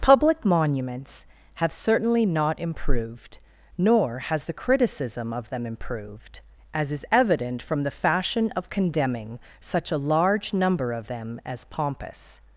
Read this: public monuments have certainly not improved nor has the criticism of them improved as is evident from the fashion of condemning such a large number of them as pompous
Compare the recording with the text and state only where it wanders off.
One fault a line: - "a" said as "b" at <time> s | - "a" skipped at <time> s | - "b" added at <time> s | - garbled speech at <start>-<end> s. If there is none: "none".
none